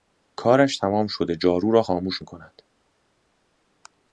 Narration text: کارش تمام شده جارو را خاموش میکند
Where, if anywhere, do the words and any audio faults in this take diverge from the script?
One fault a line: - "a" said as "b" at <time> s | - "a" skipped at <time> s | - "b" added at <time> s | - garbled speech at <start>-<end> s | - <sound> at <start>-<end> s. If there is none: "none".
none